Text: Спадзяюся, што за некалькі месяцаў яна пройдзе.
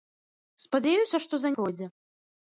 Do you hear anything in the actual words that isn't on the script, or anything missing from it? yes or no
yes